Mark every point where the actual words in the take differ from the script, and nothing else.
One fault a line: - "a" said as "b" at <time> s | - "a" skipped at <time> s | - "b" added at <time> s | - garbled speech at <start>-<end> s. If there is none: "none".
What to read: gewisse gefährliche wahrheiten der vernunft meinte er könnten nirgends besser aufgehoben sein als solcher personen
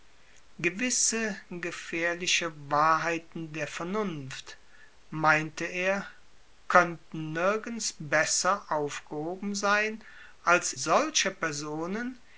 none